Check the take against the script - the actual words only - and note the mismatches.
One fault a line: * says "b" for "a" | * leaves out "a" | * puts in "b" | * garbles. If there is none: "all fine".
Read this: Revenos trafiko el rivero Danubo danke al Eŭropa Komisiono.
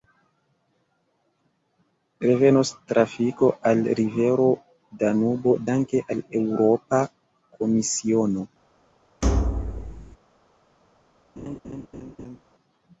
* says "al" for "el"